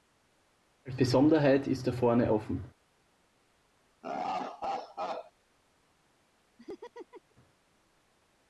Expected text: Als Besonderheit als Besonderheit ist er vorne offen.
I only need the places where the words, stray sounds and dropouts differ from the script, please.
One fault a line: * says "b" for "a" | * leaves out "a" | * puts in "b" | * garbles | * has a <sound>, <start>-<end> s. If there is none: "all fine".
* leaves out "als Besonderheit"
* has a laugh, 4.0-5.3 s
* has a laugh, 6.6-7.4 s